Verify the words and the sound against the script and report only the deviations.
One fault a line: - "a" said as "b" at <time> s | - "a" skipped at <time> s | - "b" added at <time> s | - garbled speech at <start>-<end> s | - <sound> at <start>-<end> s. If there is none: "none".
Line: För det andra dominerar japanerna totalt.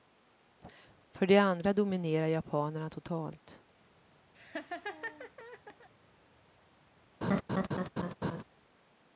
- laugh at 4.3-5.9 s
- laugh at 7.2-8.4 s